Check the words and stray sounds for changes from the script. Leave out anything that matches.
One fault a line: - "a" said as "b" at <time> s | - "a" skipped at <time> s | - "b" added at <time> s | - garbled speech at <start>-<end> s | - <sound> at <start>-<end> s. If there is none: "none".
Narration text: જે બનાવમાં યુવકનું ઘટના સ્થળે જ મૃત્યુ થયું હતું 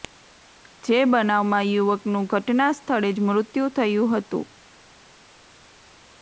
none